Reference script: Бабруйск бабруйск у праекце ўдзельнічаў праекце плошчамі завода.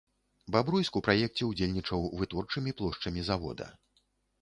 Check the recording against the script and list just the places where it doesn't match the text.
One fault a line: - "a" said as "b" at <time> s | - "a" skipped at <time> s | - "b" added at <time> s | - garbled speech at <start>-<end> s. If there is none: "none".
- "бабруйск" skipped at 1.0 s
- "праекце" said as "вытворчымі" at 2.2 s